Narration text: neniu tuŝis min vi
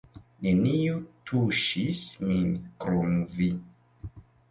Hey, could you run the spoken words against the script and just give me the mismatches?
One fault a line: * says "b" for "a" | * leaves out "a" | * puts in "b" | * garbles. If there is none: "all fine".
* puts in "krom"